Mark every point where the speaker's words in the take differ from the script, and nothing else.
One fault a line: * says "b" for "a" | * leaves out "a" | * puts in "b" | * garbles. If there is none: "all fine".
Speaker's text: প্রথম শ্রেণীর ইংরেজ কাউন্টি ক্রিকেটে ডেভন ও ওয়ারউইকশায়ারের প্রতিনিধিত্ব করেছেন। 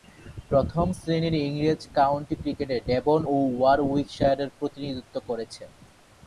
all fine